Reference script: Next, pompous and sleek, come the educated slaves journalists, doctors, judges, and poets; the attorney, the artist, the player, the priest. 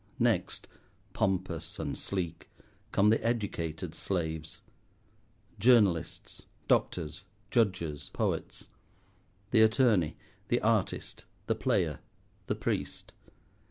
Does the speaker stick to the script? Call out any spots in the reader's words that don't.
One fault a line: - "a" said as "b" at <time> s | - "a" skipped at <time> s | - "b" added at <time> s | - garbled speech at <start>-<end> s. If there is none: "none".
- "and" skipped at 8.1 s